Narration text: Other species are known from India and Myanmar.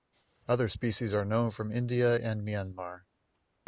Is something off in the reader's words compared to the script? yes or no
no